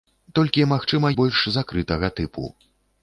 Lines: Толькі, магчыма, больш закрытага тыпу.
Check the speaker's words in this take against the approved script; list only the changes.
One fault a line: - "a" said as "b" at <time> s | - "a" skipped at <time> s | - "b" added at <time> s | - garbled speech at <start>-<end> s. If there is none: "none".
none